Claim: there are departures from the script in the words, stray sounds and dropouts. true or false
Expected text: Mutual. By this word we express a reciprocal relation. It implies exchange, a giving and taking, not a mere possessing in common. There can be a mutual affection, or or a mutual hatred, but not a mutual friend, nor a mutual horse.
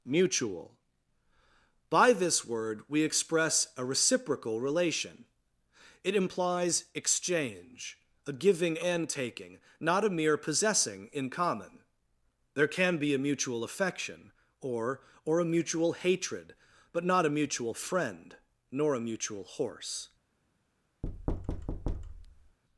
true